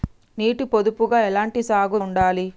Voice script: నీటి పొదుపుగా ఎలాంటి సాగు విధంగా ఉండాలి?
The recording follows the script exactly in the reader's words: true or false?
false